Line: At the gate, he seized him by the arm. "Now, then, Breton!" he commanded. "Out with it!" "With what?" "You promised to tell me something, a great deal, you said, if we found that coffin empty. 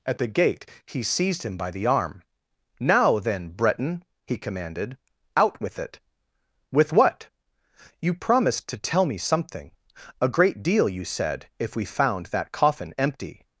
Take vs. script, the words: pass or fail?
pass